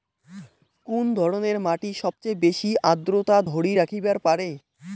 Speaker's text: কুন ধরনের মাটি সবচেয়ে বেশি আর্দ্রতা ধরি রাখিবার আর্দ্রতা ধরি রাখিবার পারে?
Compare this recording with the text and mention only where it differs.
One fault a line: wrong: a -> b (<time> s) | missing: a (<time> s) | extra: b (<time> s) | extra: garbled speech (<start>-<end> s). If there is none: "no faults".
missing: আর্দ্রতা ধরি রাখিবার (4.2 s)